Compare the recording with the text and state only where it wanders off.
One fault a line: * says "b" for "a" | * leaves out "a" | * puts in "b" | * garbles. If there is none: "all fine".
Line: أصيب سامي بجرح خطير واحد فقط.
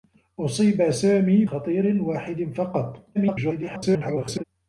* leaves out "بجرح"
* garbles